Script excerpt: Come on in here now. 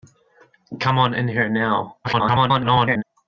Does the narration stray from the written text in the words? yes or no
yes